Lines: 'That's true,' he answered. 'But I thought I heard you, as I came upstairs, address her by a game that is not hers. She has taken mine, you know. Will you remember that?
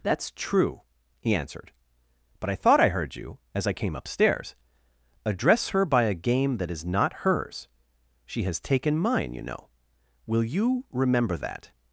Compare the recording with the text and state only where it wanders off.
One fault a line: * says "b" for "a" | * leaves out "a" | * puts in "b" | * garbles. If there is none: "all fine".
all fine